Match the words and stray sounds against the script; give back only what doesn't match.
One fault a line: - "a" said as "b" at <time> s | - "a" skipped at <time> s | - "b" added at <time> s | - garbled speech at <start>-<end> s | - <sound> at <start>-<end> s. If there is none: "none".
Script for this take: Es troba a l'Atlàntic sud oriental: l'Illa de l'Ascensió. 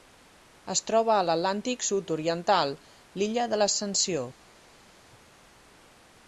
none